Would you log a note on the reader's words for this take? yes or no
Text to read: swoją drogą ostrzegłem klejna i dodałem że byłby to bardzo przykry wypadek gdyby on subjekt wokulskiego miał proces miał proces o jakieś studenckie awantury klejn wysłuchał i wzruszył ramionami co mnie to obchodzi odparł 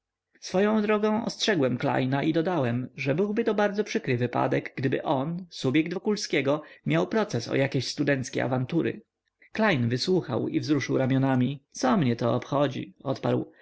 yes